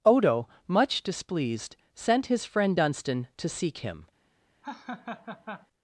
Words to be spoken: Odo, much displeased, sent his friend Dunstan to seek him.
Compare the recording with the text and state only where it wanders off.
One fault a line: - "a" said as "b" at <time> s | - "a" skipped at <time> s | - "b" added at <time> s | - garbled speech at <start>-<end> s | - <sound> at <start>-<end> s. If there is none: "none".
- laugh at 4.6-5.7 s